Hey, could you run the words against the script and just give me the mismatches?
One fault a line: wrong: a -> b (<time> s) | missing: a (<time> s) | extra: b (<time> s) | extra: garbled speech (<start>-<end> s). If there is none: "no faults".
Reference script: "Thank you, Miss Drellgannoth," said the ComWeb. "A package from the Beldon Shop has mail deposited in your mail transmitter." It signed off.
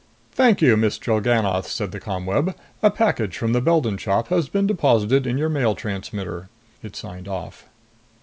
wrong: mail -> been (4.5 s)